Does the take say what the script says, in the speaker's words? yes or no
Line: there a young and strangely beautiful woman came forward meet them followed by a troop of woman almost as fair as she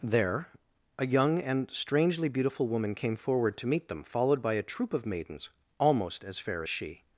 no